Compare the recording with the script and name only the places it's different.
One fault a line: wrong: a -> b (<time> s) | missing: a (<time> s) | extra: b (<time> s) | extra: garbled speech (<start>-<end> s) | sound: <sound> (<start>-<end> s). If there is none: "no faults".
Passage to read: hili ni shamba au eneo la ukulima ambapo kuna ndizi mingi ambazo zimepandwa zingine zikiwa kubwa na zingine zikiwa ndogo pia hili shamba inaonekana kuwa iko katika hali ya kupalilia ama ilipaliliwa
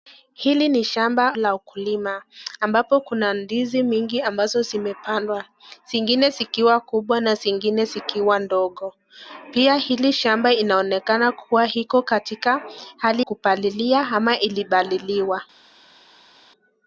missing: au eneo (1.4 s)
missing: ya (13.3 s)